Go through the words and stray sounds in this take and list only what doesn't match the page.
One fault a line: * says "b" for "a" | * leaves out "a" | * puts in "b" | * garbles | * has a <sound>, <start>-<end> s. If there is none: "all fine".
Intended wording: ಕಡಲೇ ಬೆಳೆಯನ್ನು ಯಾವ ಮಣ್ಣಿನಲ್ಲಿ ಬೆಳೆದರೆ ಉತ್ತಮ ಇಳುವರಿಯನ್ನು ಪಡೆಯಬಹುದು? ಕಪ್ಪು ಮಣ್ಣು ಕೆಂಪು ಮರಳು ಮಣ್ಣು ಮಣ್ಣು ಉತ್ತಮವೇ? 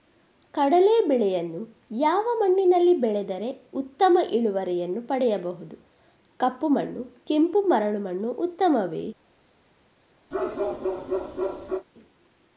* leaves out "ಮಣ್ಣು"
* has a bark, 10.3-11.9 s